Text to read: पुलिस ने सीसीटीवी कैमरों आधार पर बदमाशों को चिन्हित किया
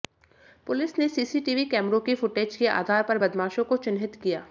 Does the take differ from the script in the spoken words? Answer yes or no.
yes